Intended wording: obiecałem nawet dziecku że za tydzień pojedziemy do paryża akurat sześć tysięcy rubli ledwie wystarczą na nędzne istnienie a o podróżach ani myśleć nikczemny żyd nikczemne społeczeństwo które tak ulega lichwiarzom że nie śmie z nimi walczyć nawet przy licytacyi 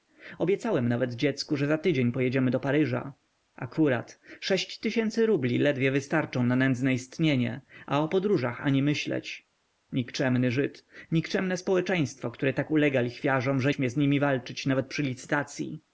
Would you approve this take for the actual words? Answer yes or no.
no